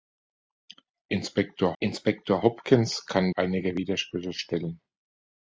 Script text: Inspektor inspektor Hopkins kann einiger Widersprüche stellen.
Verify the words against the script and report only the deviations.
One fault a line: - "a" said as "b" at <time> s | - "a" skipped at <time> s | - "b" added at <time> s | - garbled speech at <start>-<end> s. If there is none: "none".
none